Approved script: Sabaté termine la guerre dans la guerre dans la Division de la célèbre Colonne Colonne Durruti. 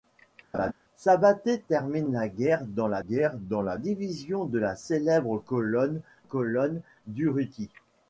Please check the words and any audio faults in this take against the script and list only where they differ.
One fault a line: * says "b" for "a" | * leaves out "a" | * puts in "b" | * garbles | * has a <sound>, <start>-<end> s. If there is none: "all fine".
* has a laugh, 0.5-0.7 s